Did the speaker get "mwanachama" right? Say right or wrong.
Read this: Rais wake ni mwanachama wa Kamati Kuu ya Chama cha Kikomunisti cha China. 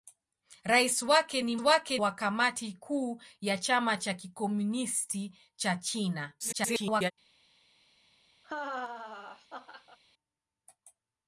wrong